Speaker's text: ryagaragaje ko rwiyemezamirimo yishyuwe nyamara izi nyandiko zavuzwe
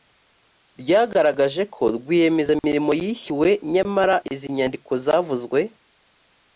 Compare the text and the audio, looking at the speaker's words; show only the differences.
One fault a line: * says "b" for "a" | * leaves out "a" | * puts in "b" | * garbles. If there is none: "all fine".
all fine